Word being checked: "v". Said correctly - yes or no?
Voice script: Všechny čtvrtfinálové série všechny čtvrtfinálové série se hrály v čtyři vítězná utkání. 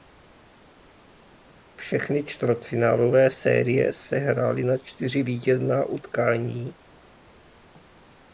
no